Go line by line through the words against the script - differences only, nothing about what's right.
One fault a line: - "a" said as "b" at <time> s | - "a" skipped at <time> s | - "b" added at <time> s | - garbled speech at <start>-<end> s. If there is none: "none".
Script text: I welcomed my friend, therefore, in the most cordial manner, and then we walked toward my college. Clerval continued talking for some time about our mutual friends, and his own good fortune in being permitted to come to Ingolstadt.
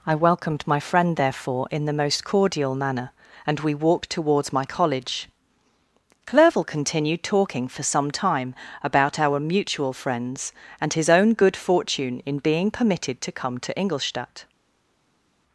- "then" skipped at 3.6 s
- "toward" said as "towards" at 4.1 s